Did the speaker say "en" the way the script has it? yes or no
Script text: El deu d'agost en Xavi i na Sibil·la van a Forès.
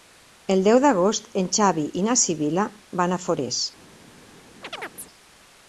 yes